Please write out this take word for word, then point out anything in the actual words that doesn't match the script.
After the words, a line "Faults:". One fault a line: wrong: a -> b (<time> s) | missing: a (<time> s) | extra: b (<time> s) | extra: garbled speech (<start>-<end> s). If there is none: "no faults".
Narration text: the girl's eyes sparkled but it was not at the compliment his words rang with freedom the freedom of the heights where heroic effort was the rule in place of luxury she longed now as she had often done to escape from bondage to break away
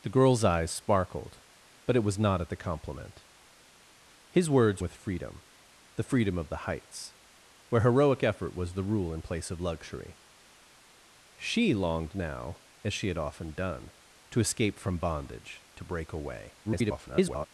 the girl's eyes sparkled but it was not at the compliment his words with freedom the freedom of the heights where heroic effort was the rule in place of luxury she longed now as she had often done to escape from bondage to break away [garbled]
Faults:
missing: rang (4.8 s)
extra: garbled speech (16.6-17.5 s)